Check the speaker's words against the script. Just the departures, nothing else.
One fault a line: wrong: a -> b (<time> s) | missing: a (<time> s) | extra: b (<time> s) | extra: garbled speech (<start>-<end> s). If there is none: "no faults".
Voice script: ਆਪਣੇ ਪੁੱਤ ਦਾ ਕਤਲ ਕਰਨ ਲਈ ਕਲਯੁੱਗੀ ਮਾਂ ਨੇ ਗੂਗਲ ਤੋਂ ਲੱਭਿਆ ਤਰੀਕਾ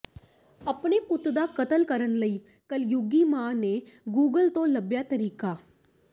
no faults